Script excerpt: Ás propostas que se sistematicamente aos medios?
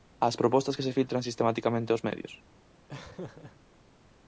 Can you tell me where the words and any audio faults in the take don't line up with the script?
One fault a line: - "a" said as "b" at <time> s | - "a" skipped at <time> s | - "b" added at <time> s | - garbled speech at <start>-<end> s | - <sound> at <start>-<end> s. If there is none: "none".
- "filtran" added at 1.0 s
- laugh at 2.9-3.6 s